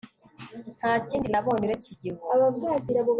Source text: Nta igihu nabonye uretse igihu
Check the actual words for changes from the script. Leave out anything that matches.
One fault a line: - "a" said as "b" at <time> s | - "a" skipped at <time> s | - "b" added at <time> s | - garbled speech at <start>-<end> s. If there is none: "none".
- "igihu" said as "kindi" at 1.1 s